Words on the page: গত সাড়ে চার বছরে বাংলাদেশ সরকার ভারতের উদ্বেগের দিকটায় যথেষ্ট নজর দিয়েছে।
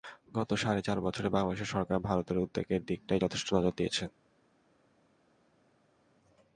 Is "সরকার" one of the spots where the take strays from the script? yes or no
no